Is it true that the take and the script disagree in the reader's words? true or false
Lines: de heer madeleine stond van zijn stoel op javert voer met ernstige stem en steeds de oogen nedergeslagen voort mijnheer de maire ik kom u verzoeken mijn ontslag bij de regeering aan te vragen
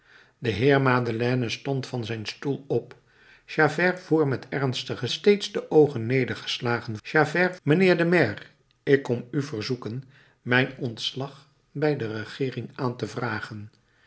true